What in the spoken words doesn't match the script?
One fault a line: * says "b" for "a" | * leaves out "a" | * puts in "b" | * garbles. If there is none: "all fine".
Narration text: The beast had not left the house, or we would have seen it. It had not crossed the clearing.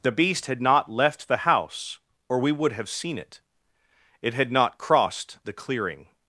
all fine